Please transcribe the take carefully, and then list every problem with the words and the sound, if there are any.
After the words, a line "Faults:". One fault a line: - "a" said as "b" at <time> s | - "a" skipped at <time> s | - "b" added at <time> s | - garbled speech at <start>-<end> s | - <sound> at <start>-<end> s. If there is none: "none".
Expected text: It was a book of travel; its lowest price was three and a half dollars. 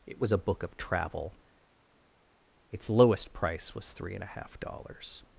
It was a book of travel; its lowest price was three and a half dollars.
Faults:
none